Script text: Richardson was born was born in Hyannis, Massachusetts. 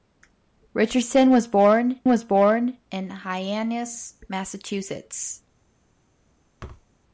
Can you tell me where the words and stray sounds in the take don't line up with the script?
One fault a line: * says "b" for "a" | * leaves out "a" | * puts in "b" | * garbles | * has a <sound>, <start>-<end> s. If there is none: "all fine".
* has a thud, 6.6-6.9 s